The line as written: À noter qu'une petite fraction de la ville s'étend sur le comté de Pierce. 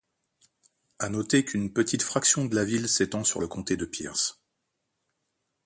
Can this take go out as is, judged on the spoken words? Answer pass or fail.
pass